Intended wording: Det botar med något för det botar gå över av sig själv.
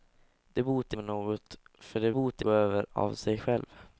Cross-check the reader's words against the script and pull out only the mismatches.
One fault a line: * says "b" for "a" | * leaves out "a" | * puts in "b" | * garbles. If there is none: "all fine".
all fine